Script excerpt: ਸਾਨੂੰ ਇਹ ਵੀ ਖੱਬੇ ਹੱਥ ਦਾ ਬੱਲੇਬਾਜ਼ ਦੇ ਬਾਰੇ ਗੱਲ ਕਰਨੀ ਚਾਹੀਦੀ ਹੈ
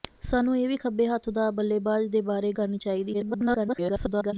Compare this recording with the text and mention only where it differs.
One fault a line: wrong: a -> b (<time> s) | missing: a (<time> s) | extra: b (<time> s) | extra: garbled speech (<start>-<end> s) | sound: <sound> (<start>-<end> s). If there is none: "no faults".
missing: ਗੱਲ (2.5 s)
extra: garbled speech (3.1-4.3 s)